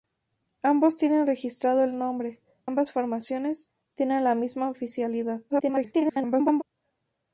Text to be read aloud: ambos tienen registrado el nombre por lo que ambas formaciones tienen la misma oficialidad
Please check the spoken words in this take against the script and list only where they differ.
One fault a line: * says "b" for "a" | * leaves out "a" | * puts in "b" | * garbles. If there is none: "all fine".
* leaves out "por lo que"
* garbles